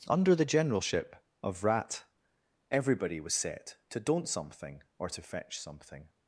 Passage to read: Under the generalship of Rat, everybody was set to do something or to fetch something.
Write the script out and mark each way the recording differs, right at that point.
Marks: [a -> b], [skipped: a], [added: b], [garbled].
Under the generalship of Rat, everybody was set to [do -> don't] something or to fetch something.